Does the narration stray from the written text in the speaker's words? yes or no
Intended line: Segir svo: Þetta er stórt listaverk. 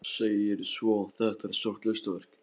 no